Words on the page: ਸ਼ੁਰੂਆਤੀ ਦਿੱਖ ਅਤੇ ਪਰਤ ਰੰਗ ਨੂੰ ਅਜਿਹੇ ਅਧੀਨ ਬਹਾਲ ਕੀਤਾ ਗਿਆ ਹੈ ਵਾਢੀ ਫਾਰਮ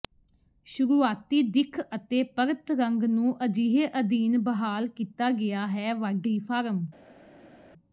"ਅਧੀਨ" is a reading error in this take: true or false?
false